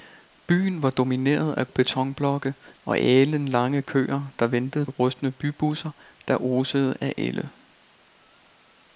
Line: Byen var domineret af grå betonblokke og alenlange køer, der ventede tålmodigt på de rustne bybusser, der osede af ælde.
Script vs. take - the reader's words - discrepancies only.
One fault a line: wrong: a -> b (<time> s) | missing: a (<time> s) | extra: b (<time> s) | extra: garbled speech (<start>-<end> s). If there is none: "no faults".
missing: grå (1.7 s)
missing: tålmodigt på de (4.9 s)